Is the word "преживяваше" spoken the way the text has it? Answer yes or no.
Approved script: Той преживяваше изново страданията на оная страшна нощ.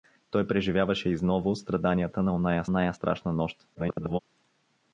yes